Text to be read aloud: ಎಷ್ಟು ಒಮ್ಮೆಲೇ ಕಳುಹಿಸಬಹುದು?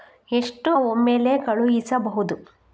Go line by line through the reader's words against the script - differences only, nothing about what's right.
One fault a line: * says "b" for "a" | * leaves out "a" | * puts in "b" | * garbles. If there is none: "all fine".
all fine